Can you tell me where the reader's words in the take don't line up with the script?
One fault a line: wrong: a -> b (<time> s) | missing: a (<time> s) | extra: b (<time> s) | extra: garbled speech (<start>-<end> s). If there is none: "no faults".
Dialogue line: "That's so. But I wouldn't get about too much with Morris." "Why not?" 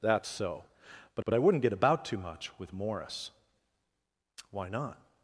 extra: but (1.2 s)